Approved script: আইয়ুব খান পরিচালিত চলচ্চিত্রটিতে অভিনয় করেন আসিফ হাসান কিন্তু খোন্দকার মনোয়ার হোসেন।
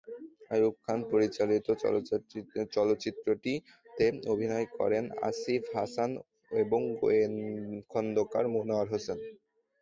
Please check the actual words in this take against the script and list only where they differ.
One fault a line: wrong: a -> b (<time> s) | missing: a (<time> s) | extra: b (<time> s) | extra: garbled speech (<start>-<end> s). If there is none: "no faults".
wrong: কিন্তু -> এবং (6.6 s)